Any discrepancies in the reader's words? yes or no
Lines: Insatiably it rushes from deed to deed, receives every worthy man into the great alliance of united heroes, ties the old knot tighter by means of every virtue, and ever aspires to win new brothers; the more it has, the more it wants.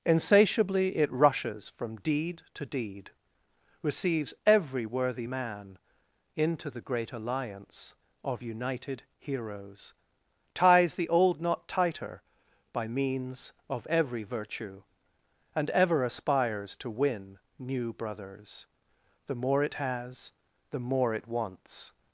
no